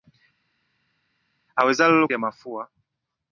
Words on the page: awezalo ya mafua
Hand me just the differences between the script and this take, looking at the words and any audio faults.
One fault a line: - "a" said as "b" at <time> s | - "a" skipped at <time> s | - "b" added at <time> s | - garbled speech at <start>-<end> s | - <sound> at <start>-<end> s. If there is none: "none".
none